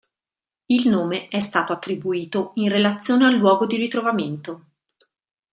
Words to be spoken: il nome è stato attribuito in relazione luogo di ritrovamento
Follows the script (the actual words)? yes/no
no